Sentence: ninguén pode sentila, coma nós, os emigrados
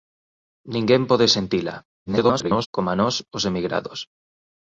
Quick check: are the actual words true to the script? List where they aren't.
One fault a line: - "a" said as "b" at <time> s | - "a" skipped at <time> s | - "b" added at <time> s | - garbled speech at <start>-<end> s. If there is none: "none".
- garbled speech at 2.1-2.7 s